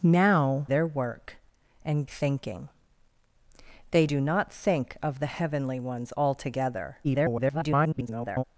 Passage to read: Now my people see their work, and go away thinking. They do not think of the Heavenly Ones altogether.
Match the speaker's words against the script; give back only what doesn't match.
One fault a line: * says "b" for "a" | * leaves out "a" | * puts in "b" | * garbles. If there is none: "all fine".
* leaves out "my people see"
* leaves out "go away"
* garbles